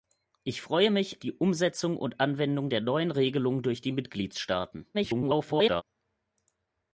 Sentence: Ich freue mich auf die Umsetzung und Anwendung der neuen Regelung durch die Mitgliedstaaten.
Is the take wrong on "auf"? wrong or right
wrong